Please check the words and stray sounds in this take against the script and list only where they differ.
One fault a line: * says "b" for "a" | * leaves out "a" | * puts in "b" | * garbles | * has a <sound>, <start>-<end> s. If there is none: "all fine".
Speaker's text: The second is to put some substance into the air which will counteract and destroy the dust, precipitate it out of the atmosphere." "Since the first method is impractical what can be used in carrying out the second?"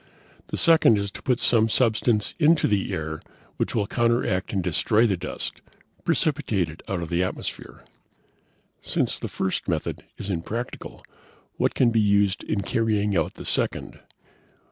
all fine